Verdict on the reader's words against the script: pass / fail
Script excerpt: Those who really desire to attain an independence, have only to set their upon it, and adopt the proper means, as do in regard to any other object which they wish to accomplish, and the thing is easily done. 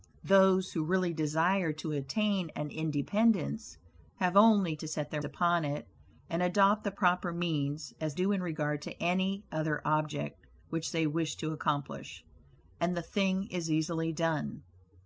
pass